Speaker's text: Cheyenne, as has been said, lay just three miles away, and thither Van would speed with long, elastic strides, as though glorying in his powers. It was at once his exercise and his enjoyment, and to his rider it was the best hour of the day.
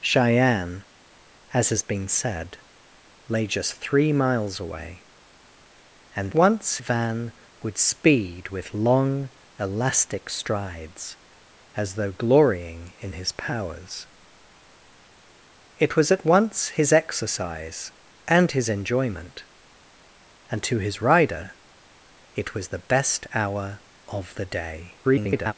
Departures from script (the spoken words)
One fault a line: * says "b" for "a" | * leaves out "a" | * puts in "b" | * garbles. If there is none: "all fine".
* says "once" for "thither"
* garbles